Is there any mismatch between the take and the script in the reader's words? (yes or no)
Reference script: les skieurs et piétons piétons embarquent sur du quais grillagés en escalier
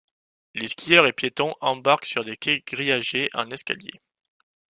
yes